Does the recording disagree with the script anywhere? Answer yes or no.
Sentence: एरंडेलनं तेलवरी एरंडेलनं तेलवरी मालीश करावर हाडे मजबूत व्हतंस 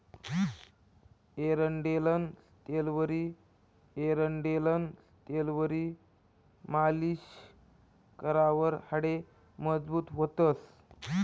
no